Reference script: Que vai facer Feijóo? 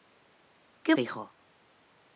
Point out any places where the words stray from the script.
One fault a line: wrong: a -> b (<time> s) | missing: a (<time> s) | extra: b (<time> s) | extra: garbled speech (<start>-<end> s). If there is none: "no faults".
missing: vai facer (0.9 s)